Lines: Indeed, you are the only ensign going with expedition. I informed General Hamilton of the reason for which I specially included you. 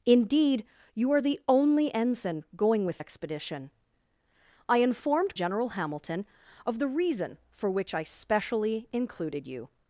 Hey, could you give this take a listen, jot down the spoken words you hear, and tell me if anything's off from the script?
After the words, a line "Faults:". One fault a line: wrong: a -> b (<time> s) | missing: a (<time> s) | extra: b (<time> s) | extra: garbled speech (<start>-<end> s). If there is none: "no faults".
Indeed, you are the only ensign going with expedition. I informed General Hamilton of the reason for which I specially included you.
Faults:
no faults